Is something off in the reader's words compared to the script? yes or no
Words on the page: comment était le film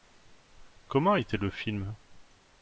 no